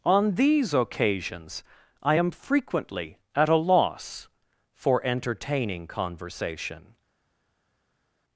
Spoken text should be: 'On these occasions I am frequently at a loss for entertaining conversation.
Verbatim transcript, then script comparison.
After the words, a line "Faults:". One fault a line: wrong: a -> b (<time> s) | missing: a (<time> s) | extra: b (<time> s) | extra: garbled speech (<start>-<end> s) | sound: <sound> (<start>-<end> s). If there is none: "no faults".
'On these occasions I am frequently at a loss for entertaining conversation.
Faults:
no faults